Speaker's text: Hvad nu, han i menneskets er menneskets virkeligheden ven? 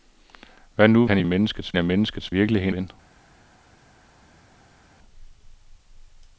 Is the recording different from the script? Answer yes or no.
no